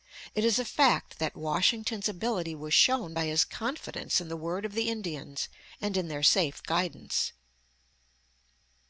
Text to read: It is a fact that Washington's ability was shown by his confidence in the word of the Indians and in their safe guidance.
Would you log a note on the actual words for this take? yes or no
no